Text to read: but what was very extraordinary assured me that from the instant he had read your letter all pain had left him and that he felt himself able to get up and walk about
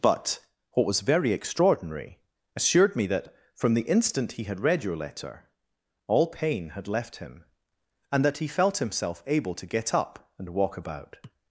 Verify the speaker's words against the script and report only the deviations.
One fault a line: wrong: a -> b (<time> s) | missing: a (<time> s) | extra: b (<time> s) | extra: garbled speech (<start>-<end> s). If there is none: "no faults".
no faults